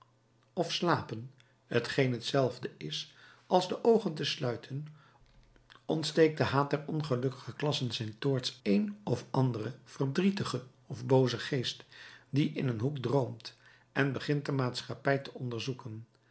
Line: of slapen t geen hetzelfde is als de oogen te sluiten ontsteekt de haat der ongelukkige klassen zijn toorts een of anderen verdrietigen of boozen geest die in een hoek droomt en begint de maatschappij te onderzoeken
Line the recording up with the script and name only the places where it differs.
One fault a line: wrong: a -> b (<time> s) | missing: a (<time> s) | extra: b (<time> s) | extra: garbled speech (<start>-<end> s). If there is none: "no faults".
no faults